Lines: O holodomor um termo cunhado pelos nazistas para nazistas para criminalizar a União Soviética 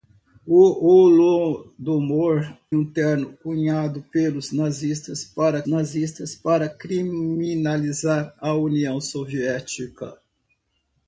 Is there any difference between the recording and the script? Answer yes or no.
no